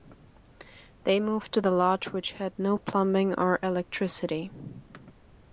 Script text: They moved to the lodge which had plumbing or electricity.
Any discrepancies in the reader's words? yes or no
yes